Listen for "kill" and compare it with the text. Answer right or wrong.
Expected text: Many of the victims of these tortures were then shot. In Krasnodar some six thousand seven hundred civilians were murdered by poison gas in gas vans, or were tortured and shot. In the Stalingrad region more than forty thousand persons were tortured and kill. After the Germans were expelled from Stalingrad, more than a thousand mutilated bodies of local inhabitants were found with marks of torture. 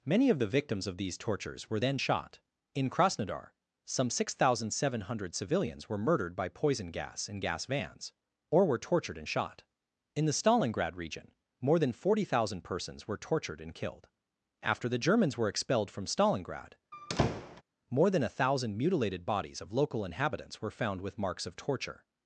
wrong